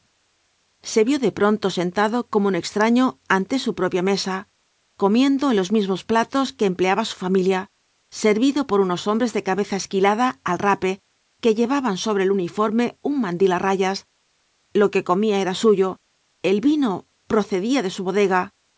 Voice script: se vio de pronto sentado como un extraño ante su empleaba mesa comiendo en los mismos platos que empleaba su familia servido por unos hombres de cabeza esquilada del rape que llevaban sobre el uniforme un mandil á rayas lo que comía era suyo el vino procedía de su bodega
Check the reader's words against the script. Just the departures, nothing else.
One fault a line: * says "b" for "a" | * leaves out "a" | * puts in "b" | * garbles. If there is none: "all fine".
* says "propia" for "empleaba"
* says "al" for "del"